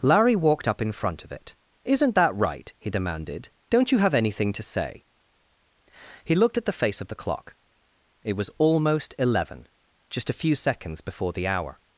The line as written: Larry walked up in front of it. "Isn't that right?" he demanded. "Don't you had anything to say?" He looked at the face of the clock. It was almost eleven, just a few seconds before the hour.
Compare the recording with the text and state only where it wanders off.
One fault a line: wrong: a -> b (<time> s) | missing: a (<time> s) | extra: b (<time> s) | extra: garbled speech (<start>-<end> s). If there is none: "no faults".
wrong: had -> have (4.0 s)